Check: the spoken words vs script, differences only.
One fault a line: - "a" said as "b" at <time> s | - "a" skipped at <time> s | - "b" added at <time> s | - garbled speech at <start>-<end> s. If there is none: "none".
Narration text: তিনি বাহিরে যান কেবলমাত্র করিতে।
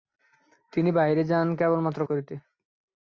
none